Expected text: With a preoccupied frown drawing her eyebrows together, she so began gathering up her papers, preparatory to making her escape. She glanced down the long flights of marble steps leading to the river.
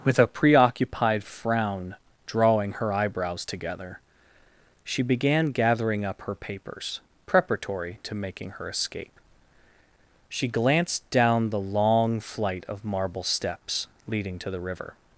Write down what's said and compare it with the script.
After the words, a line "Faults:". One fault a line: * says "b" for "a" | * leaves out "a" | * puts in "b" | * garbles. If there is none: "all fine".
With a preoccupied frown drawing her eyebrows together, she began gathering up her papers, preparatory to making her escape. She glanced down the long flight of marble steps leading to the river.
Faults:
* leaves out "so"
* says "flight" for "flights"